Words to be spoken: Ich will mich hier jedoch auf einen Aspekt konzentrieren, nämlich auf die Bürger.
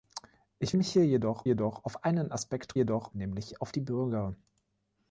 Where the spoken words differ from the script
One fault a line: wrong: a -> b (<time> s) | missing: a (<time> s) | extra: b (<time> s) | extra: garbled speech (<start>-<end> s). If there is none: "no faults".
missing: will (0.8 s)
extra: jedoch (1.4 s)
wrong: konzentrieren -> jedoch (2.7 s)